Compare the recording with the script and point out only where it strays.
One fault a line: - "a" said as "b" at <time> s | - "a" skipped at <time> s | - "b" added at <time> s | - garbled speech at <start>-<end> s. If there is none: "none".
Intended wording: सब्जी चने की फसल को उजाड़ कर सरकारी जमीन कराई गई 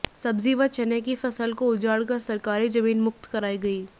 - "व" added at 0.5 s
- "मुक्त" added at 3.0 s